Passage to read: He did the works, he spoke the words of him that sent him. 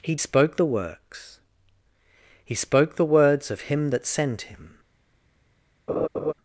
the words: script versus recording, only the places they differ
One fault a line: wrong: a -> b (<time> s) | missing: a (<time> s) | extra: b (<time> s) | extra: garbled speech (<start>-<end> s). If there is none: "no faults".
wrong: did -> spoke (0.2 s)